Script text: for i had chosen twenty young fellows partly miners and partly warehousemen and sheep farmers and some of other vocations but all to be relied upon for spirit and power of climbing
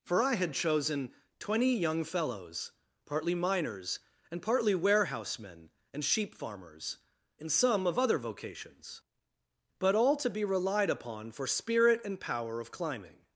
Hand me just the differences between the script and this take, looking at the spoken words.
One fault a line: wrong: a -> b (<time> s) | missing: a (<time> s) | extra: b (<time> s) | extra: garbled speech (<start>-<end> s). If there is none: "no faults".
no faults